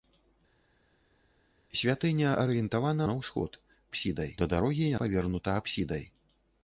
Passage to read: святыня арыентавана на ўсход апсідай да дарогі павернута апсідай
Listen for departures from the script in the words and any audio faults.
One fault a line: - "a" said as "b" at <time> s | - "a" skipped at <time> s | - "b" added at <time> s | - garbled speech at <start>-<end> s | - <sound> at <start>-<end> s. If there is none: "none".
none